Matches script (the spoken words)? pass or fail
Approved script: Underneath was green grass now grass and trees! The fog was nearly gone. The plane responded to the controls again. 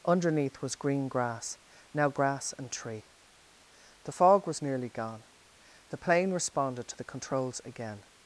fail